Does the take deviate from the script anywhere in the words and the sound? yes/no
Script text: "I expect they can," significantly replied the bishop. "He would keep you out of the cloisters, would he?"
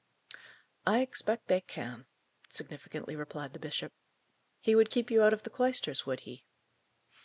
no